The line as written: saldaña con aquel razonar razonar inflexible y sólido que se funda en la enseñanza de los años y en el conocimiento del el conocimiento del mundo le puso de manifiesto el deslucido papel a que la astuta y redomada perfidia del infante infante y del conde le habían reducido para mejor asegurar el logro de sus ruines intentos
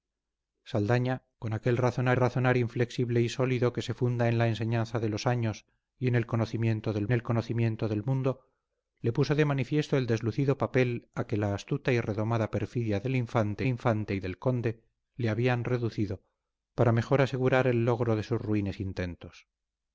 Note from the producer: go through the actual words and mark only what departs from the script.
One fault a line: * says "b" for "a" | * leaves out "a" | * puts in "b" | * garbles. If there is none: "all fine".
all fine